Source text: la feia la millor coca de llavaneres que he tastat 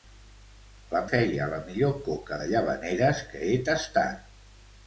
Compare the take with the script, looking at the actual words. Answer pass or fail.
pass